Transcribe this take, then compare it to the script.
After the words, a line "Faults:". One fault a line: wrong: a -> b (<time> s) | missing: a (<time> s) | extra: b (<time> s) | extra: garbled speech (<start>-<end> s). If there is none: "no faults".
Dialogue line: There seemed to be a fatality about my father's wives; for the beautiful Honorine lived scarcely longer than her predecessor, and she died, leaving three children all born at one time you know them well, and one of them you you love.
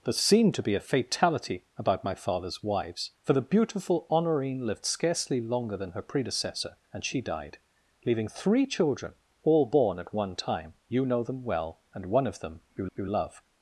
There seemed to be a fatality about my father's wives; for the beautiful Honorine lived scarcely longer than her predecessor, and she died, leaving three children all born at one time you know them well, and one of them you you love.
Faults:
no faults